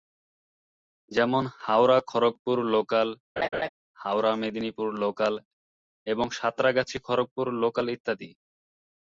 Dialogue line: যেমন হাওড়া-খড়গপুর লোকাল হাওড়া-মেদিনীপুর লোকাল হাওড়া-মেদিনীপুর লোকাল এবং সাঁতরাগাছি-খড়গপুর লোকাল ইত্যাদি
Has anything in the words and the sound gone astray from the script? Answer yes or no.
yes